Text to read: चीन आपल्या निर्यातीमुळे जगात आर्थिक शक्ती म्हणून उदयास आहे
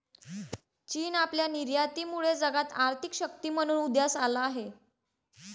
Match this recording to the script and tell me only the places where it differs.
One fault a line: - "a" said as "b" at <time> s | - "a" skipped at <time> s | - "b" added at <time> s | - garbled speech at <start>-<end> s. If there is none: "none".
- "आला" added at 4.2 s